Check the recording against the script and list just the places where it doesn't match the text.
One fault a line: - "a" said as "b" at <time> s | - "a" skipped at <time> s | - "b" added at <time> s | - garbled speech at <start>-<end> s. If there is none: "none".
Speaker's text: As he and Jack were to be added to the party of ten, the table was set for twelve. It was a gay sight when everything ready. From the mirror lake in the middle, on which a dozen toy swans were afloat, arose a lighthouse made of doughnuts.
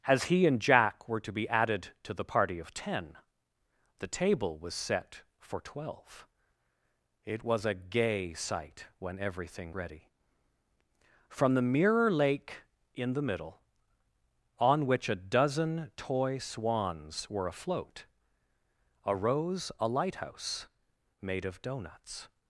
none